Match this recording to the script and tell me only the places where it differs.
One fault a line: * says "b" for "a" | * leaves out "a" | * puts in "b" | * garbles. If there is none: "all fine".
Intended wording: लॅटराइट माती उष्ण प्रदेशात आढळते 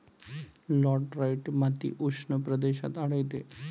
all fine